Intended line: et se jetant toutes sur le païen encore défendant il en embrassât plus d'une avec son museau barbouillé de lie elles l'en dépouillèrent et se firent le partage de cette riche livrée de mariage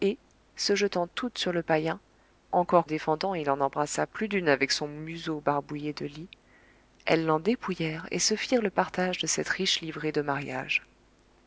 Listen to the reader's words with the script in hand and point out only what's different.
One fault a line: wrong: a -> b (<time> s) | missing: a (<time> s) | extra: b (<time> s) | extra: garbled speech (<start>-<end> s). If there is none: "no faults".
no faults